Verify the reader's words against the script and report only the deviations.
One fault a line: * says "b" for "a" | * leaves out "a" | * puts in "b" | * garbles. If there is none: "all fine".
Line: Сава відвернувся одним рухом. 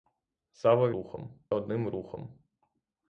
* says "рухом" for "відвернувся"